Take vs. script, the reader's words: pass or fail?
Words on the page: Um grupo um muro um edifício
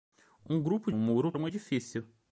pass